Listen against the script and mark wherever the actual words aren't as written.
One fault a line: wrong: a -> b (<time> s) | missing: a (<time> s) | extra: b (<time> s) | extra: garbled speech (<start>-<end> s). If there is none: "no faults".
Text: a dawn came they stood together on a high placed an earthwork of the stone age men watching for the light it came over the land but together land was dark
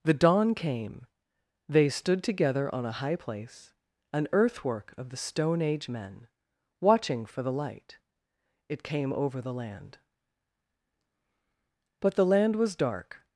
wrong: a -> the (0.0 s)
wrong: placed -> place (3.1 s)
wrong: together -> the (12.1 s)